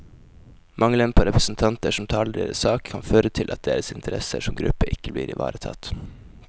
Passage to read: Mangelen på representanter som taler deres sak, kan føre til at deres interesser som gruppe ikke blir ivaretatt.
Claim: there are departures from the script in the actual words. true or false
false